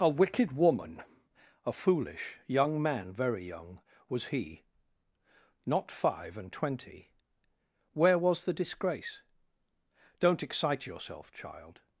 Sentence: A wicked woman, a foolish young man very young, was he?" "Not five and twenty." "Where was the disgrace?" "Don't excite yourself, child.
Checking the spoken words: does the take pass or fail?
pass